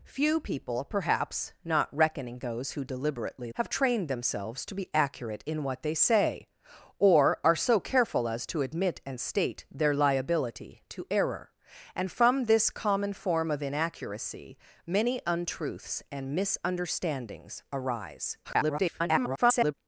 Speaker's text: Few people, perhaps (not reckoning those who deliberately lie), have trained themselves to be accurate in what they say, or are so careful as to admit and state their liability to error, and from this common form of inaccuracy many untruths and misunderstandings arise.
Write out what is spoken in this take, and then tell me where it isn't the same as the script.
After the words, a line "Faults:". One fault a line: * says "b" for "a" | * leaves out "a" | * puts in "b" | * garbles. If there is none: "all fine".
Few people, perhaps (not reckoning those who deliberately), have trained themselves to be accurate in what they say, or are so careful as to admit and state their liability to error, and from this common form of inaccuracy many untruths and misunderstandings arise. [garbled]
Faults:
* leaves out "lie"
* garbles